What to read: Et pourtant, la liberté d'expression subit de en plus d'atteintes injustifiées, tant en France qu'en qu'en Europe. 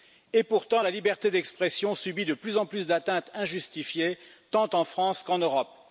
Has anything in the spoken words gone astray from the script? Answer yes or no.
yes